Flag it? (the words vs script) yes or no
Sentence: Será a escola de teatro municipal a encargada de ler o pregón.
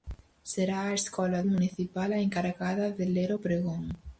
yes